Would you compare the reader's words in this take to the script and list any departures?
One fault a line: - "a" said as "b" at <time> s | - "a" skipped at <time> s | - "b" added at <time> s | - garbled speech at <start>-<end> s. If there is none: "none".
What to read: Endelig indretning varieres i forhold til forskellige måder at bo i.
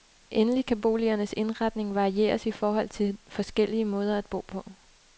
- "kan boligernes" added at 0.7 s
- "i" said as "på" at 4.5 s